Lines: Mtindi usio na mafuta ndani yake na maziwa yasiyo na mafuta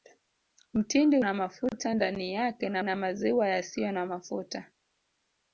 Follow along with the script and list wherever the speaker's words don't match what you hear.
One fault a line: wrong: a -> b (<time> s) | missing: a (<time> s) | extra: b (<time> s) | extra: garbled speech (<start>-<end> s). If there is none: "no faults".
missing: usio (1.2 s)
extra: na (2.8 s)